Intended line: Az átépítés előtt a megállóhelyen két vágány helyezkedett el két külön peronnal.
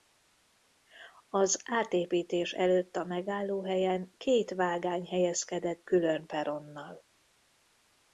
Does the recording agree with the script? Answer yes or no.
no